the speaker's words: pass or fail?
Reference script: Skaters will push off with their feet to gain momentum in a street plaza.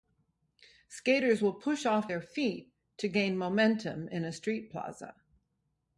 fail